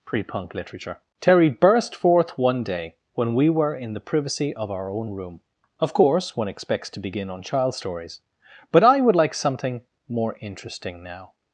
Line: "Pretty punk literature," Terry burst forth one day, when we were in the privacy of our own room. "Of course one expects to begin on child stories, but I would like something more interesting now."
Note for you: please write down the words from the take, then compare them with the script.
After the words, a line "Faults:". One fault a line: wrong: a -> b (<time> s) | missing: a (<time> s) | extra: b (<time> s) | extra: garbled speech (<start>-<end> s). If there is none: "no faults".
"Pre punk literature," Terry burst forth one day, when we were in the privacy of our own room. "Of course one expects to begin on child stories, but I would like something more interesting now."
Faults:
wrong: Pretty -> Pre (0.0 s)